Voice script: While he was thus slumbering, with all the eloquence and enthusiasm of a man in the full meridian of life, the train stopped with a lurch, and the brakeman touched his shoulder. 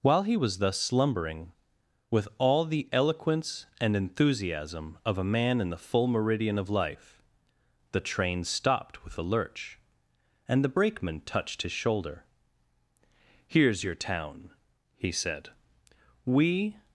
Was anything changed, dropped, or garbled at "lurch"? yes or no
no